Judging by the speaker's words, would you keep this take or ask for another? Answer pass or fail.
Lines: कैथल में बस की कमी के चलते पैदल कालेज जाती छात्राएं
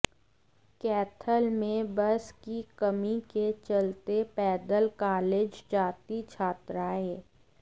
pass